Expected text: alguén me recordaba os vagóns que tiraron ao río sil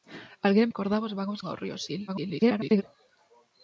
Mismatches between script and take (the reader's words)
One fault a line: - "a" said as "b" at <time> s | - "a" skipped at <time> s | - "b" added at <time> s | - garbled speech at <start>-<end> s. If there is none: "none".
- "me" skipped at 0.7 s
- "que tiraron" skipped at 1.4 s
- garbled speech at 2.1-2.8 s